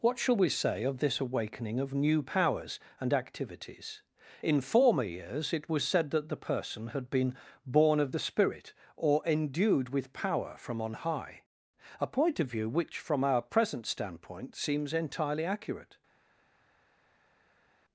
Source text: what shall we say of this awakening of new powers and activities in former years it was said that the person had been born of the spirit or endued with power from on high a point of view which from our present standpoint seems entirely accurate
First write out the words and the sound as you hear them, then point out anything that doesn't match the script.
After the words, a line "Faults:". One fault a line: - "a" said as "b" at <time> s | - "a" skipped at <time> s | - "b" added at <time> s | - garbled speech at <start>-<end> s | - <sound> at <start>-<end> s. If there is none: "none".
what shall we say of this awakening of new powers and activities in former years it was said that the person had been born of the spirit or endued with power from on high a point of view which from our present standpoint seems entirely accurate
Faults:
none